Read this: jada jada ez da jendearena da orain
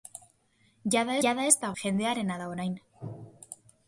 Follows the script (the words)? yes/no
yes